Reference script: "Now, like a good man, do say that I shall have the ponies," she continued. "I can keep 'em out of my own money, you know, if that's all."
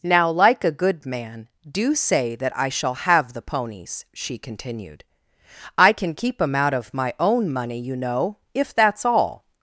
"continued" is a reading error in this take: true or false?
false